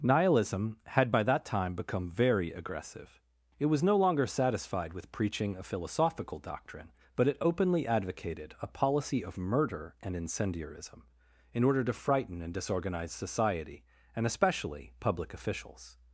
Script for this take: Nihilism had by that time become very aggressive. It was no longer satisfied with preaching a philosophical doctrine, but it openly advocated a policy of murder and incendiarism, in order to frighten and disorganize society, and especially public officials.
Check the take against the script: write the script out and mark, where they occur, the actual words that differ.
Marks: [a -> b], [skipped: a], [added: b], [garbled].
Nihilism had by that time become very aggressive. It was no longer satisfied with preaching a philosophical doctrine, but it openly advocated a policy of murder and incendiarism, in order to frighten and disorganize society, and especially public officials.